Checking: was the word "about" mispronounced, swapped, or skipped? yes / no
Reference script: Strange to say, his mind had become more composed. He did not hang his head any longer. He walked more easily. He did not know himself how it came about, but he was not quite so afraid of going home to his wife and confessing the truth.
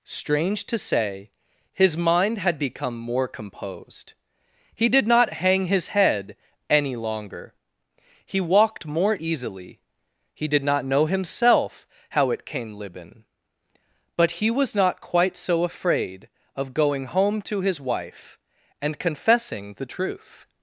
yes